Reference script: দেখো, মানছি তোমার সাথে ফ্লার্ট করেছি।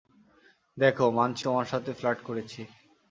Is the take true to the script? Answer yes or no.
yes